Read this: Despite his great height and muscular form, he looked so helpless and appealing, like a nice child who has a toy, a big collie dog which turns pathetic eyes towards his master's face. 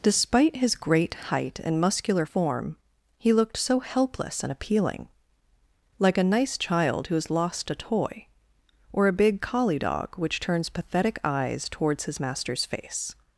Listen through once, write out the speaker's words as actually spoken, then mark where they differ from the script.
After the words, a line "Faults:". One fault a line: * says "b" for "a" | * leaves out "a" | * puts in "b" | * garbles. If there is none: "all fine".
Despite his great height and muscular form, he looked so helpless and appealing, like a nice child who has lost a toy, or a big collie dog which turns pathetic eyes towards his master's face.
Faults:
* puts in "lost"
* puts in "or"